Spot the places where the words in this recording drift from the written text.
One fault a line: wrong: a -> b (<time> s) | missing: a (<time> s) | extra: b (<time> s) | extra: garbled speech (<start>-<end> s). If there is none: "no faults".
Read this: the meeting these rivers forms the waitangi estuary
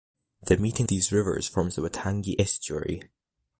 no faults